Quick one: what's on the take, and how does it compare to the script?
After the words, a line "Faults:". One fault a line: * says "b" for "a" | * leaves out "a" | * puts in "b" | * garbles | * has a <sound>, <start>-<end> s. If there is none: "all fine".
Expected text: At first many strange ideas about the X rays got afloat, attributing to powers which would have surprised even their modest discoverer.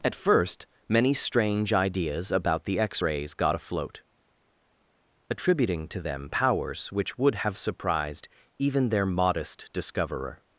At first many strange ideas about the X rays got afloat, attributing to them powers which would have surprised even their modest discoverer.
Faults:
* puts in "them"